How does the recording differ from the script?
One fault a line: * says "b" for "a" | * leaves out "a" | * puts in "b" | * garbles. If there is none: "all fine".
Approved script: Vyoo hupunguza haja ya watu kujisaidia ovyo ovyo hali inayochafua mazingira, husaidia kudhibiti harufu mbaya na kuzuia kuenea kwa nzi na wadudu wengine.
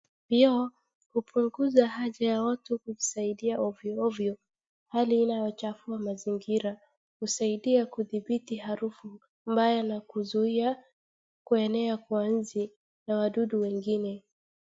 all fine